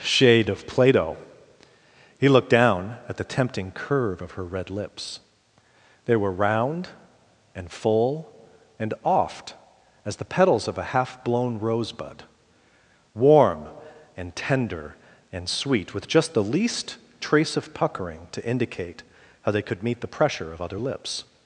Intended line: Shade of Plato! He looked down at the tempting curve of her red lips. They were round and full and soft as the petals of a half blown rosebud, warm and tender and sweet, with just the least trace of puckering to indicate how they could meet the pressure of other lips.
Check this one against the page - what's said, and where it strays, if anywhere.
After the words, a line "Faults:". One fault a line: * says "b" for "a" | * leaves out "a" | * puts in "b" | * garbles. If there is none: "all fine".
Shade of Plato! He looked down at the tempting curve of her red lips. They were round and full and oft as the petals of a half blown rosebud, warm and tender and sweet, with just the least trace of puckering to indicate how they could meet the pressure of other lips.
Faults:
* says "oft" for "soft"